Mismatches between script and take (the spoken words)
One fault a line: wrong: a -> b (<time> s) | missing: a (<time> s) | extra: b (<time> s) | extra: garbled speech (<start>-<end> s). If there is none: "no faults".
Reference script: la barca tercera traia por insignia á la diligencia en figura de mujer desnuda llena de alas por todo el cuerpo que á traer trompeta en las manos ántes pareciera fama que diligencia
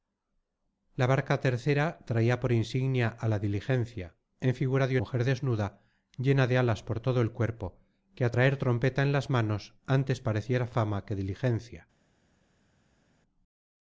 no faults